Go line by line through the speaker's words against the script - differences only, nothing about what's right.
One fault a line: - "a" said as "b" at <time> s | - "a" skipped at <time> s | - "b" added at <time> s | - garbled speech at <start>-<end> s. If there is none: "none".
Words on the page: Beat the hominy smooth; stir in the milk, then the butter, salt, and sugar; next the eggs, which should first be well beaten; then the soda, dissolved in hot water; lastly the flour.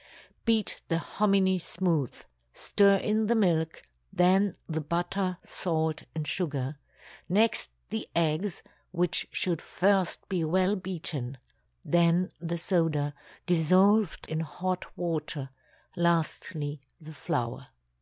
none